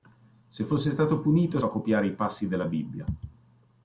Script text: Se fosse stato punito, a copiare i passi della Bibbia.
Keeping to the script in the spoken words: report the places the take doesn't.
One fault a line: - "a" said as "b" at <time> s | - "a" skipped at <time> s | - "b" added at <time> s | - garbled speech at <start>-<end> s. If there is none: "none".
none